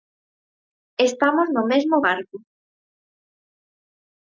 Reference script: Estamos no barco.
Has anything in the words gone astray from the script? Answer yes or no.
yes